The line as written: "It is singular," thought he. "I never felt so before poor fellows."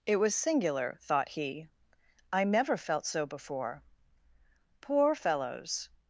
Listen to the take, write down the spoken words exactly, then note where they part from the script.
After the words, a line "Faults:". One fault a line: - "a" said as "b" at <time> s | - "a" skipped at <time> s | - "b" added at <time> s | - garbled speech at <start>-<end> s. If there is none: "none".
"It was singular," thought he. "I never felt so before poor fellows."
Faults:
- "is" said as "was" at 0.1 s